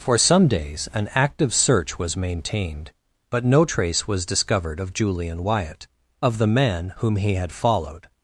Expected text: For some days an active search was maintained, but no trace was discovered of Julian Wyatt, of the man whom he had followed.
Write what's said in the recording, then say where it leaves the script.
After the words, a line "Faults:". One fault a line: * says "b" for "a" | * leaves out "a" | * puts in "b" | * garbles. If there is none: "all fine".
For some days an active search was maintained, but no trace was discovered of Julian Wyatt, of the man whom he had followed.
Faults:
all fine